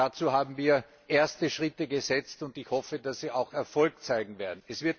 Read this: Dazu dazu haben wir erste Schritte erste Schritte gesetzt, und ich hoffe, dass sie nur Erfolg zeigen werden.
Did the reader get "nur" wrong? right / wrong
wrong